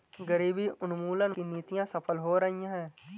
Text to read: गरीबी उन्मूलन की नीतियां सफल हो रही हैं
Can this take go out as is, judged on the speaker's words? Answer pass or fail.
pass